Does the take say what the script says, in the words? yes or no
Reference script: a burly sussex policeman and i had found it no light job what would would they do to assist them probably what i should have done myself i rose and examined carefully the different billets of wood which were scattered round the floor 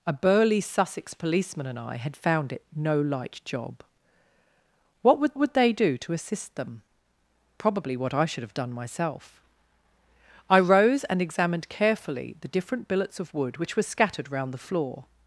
yes